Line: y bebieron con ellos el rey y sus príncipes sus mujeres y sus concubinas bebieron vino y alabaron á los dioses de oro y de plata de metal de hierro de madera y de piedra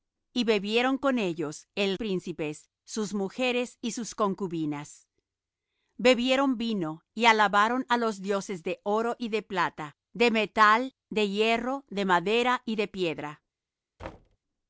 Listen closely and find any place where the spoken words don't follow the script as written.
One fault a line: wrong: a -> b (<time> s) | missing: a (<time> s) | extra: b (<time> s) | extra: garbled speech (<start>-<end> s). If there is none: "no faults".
missing: rey y sus (1.9 s)